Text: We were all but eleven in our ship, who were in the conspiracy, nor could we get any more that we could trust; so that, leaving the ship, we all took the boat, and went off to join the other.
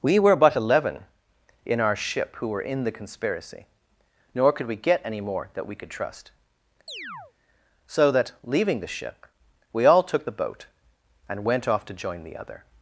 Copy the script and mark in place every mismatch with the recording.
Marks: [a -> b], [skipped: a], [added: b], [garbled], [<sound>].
We were [skipped: all] but eleven in our ship, who were in the conspiracy, nor could we get any more that we could trust; [chirp] so that, leaving the ship, we all took the boat, and went off to join the other.